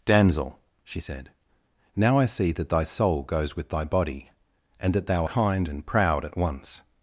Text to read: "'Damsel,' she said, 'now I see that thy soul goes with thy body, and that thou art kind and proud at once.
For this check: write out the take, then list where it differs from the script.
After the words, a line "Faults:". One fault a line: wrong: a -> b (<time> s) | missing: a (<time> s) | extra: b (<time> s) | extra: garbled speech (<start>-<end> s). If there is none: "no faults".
"'Damsel,' she said, 'now I see that thy soul goes with thy body, and that thou kind and proud at once.
Faults:
missing: art (5.3 s)